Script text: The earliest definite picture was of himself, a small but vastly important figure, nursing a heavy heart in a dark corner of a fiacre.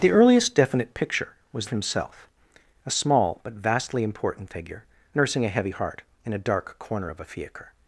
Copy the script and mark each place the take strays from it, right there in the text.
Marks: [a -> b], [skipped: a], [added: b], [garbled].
The earliest definite picture was of himself, a small but vastly important figure, nursing a heavy heart in a dark corner of a fiacre.